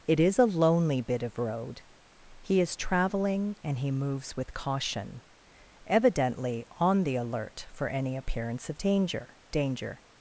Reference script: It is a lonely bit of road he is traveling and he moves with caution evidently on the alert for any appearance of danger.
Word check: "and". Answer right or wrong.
right